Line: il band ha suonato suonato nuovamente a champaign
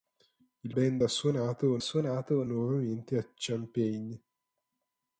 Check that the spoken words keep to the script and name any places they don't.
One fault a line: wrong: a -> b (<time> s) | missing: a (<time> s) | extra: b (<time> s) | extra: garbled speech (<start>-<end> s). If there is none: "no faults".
no faults